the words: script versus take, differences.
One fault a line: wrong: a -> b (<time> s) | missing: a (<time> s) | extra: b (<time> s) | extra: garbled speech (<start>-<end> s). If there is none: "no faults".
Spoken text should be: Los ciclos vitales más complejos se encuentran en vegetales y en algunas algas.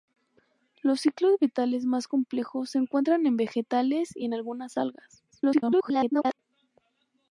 extra: garbled speech (5.3-6.4 s)